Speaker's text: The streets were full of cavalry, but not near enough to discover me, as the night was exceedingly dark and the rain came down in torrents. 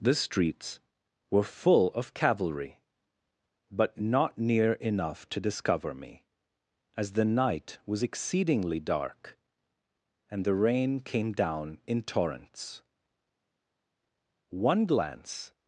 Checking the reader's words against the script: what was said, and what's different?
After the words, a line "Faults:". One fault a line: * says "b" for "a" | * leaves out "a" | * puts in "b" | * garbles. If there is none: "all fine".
The streets were full of cavalry, but not near enough to discover me, as the night was exceedingly dark and the rain came down in torrents. One glance
Faults:
* puts in "One glance"